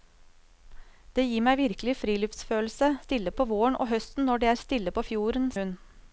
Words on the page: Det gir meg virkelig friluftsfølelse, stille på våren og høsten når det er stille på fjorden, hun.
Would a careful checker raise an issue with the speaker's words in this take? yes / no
no